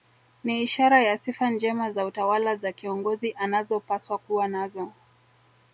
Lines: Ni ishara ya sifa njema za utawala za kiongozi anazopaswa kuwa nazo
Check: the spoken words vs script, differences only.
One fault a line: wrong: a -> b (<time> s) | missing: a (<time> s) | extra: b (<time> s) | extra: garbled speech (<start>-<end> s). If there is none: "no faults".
no faults